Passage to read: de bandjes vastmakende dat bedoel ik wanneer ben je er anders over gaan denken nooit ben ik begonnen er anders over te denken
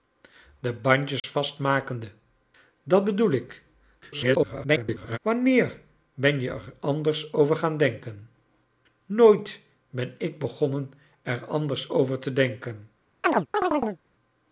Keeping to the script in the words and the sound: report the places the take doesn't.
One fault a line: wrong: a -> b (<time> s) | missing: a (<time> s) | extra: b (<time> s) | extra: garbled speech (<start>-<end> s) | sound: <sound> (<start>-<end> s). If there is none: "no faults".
sound: dropout (1.2-1.2 s)
extra: garbled speech (4.0-5.2 s)
sound: chirp (13.2-14.0 s)